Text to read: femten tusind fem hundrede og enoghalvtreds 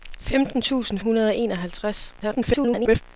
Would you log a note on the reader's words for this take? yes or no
yes